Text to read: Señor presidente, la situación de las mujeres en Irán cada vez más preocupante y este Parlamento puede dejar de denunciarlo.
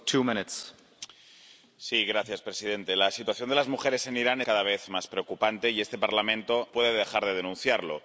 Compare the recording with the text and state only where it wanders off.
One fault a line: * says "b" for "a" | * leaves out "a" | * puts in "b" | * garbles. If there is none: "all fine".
all fine